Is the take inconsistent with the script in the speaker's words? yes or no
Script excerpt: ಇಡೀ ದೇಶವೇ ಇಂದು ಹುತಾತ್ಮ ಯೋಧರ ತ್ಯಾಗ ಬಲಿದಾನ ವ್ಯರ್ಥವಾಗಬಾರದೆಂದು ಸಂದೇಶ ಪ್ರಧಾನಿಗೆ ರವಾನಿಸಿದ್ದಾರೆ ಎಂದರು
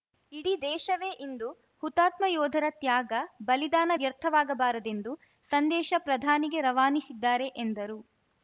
no